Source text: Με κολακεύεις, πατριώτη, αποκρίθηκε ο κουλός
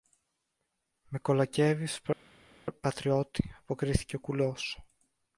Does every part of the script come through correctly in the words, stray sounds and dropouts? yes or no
yes